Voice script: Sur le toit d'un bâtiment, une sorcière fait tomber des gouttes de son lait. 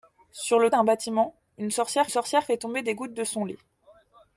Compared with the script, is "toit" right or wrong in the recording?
wrong